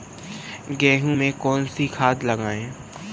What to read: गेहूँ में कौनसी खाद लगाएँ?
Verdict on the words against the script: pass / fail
pass